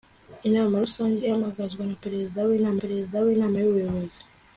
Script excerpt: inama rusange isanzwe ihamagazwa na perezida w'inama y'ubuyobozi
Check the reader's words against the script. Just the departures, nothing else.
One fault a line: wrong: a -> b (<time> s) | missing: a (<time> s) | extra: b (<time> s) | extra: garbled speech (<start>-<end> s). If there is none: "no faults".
missing: isanzwe (1.1 s)
extra: perezida w'inama (2.8 s)